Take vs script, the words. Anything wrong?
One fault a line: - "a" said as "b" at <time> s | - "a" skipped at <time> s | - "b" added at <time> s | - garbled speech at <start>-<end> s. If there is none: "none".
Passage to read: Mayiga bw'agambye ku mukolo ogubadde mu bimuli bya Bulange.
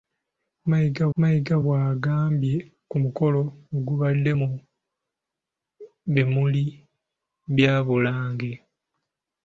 - "mayiga" added at 1.2 s